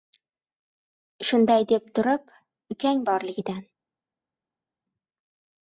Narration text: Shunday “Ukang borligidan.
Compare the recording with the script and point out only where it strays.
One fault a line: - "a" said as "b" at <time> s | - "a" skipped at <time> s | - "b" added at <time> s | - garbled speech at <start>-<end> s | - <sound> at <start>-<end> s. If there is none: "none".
- "deb turib" added at 1.7 s